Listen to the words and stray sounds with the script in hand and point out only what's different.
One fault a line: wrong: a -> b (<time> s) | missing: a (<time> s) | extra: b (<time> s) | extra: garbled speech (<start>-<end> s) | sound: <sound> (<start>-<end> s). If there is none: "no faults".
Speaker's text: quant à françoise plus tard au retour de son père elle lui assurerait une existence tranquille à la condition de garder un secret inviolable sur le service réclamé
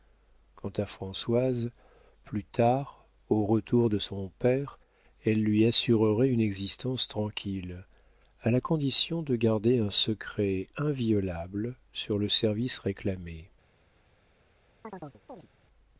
sound: chirp (14.8-15.5 s)